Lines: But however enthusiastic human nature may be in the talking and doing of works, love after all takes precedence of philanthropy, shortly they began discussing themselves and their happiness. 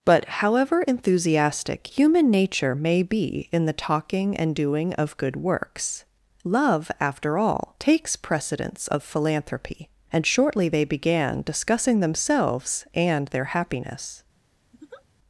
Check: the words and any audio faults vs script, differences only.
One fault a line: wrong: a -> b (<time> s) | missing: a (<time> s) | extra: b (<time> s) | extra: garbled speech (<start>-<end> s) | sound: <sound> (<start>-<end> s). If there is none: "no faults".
extra: good (5.2 s)
extra: and (10.1 s)
sound: laugh (14.7-15.1 s)